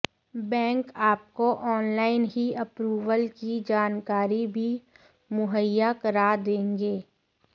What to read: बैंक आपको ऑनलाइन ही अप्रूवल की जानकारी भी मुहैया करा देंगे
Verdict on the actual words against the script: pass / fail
pass